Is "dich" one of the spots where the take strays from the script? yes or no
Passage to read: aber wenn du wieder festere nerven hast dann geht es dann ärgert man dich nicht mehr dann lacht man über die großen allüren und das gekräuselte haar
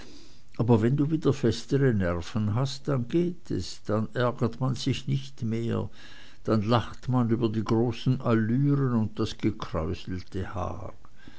yes